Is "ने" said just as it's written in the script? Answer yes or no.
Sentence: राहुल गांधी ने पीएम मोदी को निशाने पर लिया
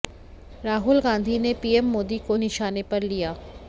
yes